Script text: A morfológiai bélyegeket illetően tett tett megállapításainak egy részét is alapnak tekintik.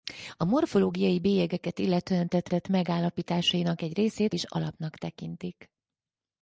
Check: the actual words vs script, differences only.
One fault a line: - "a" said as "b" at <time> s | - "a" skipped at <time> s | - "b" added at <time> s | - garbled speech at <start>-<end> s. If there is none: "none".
none